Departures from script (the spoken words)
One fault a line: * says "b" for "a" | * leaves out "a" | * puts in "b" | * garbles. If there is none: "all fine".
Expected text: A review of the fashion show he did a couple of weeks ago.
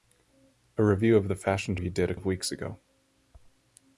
* leaves out "show"
* leaves out "couple"